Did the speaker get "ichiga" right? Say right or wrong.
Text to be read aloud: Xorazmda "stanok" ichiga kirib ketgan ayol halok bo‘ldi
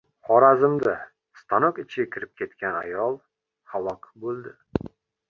right